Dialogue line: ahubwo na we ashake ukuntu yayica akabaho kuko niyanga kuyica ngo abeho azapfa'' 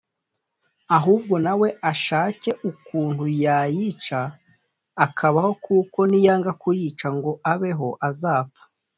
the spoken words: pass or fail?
pass